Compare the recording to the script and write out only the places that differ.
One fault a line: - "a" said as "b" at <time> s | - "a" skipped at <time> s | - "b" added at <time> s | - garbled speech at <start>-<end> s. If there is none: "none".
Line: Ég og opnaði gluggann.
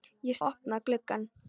none